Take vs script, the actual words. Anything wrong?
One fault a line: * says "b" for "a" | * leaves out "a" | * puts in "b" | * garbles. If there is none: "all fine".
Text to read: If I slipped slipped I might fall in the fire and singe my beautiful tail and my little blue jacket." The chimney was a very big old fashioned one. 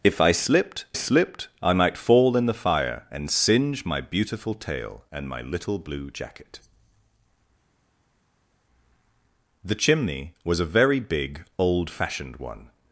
all fine